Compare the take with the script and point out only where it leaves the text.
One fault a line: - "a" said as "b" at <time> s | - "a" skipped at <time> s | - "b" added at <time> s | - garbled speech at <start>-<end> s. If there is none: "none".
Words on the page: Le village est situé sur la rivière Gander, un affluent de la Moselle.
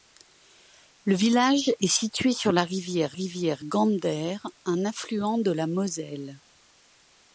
- "rivière" added at 3.1 s